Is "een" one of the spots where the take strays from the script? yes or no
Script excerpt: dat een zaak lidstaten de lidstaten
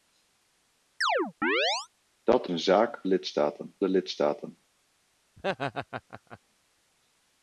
no